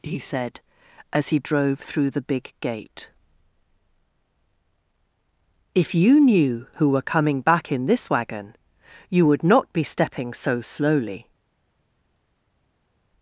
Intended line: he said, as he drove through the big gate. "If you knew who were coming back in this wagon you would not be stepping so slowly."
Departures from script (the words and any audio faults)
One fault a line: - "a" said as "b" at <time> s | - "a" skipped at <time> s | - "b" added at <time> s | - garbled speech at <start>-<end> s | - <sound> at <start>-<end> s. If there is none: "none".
none